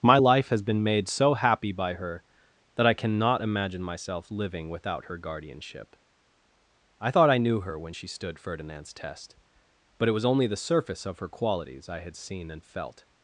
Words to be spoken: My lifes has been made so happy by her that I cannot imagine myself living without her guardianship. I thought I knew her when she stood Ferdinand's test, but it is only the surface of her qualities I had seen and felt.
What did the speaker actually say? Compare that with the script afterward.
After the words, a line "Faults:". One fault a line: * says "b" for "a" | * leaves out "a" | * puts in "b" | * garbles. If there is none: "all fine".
My life has been made so happy by her that I cannot imagine myself living without her guardianship. I thought I knew her when she stood Ferdinand's test, but it was only the surface of her qualities I had seen and felt.
Faults:
* says "life" for "lifes"
* says "was" for "is"